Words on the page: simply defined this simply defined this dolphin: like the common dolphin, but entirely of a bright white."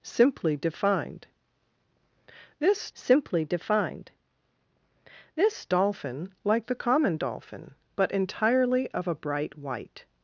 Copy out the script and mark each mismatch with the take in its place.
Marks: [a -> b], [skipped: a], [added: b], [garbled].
simply defined this simply defined this dolphin: like the common dolphin, but entirely of a bright white."